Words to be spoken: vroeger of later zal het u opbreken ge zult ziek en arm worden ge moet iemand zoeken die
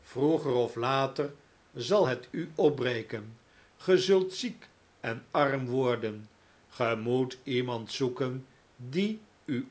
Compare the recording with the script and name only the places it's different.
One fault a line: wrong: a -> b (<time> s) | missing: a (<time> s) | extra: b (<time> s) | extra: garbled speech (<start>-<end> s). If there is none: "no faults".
no faults